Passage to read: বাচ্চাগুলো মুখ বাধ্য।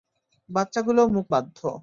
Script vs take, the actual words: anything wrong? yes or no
no